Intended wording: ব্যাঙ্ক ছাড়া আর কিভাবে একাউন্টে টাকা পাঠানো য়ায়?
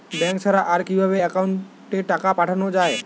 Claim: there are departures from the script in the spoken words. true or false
false